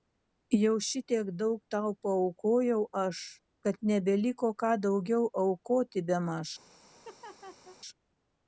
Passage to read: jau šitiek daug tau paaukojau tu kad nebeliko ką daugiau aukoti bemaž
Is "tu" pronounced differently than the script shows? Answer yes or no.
yes